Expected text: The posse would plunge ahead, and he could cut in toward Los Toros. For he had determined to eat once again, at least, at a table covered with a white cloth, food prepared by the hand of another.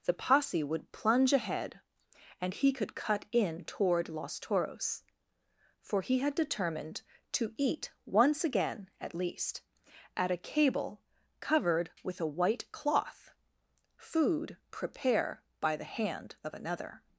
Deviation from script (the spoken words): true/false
true